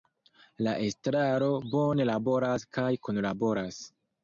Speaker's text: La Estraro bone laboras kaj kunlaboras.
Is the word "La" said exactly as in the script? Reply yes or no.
yes